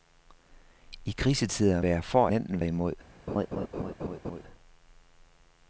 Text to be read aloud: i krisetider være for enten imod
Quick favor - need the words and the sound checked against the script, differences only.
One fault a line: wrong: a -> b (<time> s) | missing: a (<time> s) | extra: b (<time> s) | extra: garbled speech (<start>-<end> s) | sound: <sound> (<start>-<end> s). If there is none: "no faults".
sound: laugh (3.3-4.4 s)